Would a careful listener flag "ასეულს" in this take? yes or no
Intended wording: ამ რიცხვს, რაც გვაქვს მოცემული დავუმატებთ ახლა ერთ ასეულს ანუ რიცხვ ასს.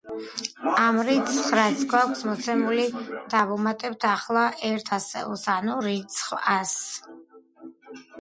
no